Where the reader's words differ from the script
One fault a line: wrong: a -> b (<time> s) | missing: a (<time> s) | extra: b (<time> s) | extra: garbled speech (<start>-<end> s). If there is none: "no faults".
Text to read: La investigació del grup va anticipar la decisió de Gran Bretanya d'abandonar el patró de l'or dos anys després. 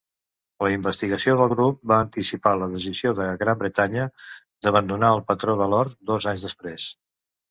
no faults